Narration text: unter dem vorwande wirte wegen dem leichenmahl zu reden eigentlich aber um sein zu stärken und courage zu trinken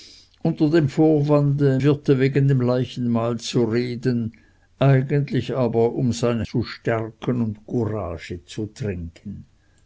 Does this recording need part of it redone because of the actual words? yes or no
no